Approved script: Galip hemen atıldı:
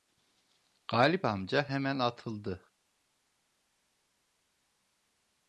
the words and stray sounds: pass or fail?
fail